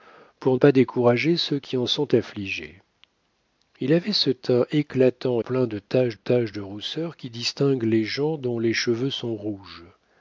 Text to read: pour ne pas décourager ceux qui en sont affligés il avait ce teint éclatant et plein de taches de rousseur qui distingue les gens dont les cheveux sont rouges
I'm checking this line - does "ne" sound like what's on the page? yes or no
no